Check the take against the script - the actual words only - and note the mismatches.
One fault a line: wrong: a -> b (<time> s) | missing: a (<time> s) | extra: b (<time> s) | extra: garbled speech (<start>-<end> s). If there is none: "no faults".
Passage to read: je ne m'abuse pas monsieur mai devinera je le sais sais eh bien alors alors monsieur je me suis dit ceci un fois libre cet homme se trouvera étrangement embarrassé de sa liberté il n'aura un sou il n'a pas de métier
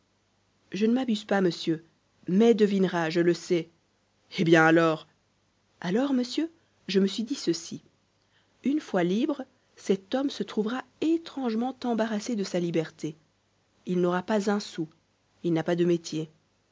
missing: sais (3.7 s)
wrong: un -> une (8.6 s)
extra: pas (14.2 s)